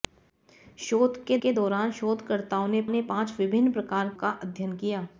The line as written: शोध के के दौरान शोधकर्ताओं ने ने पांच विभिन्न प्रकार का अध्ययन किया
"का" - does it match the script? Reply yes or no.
yes